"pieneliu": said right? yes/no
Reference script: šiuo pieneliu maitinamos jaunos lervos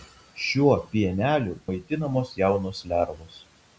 yes